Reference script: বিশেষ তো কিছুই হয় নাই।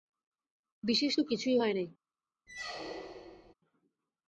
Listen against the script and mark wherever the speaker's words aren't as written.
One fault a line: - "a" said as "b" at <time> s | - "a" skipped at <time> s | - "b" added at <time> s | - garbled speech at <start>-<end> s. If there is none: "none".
none